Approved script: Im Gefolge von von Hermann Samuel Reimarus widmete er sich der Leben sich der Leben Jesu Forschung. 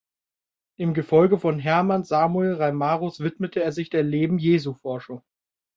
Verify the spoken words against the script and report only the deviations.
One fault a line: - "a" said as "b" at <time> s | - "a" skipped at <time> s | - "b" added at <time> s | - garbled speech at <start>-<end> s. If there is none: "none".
- "von" skipped at 1.6 s
- "sich der Leben" skipped at 4.4 s